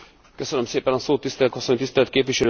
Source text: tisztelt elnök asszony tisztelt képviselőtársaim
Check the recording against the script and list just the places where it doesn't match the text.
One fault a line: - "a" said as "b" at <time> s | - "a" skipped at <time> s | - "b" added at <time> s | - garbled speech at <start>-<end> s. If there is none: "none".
- "elnök" skipped at 1.6 s